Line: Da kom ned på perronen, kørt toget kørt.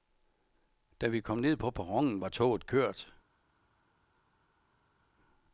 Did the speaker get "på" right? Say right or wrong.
right